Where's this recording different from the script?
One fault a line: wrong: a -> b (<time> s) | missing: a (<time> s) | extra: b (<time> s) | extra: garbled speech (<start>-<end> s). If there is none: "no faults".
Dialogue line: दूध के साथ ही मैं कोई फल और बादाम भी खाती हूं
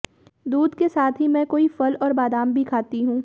no faults